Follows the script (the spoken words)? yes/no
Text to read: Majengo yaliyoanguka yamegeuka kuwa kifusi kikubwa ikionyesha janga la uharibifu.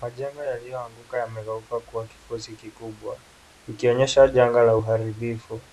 yes